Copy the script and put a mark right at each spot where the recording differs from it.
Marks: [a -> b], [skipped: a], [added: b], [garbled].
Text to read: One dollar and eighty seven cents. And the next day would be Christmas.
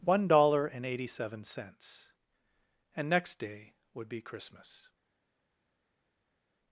One dollar and eighty seven cents. And [skipped: the] next day would be Christmas.